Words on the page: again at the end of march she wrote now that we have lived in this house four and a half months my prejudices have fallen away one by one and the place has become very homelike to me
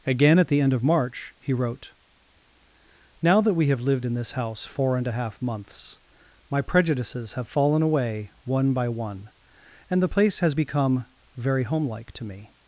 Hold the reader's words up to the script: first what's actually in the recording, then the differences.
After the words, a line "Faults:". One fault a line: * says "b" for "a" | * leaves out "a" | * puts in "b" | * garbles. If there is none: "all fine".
again at the end of march he wrote now that we have lived in this house four and a half months my prejudices have fallen away one by one and the place has become very homelike to me
Faults:
* says "he" for "she"